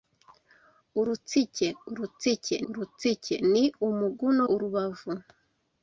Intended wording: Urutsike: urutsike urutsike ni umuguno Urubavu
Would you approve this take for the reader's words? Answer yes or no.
yes